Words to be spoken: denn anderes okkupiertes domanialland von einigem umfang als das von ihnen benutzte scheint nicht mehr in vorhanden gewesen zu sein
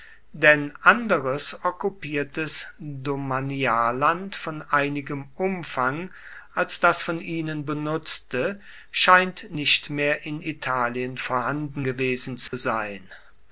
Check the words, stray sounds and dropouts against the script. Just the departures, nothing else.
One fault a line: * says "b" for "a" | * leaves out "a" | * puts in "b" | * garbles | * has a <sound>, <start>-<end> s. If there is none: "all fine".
* puts in "italien"
* has a dropout, 12.5-12.5 s